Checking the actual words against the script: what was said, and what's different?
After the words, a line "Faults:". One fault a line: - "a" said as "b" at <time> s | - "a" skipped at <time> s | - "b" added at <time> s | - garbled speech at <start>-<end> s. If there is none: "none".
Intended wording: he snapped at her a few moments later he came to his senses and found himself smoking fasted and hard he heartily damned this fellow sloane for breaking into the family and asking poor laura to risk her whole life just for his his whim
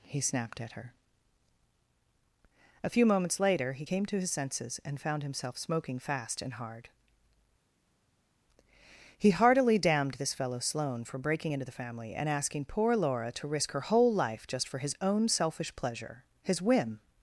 he snapped at her a few moments later he came to his senses and found himself smoking fast and hard he heartily damned this fellow sloane for breaking into the family and asking poor laura to risk her whole life just for his own selfish pleasure his whim
Faults:
- "fasted" said as "fast" at 6.0 s
- "own selfish pleasure" added at 15.0 s